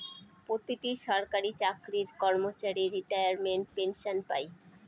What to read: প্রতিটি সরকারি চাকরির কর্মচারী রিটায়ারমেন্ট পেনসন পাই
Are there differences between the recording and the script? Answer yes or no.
no